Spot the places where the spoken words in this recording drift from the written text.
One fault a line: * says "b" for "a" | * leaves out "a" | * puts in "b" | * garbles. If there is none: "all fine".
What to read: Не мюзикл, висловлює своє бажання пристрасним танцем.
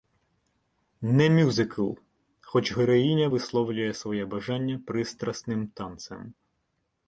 * puts in "хоч героїня"